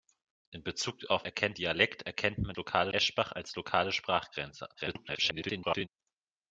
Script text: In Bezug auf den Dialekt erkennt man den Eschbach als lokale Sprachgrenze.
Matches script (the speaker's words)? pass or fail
fail